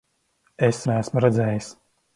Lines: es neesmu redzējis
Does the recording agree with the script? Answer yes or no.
yes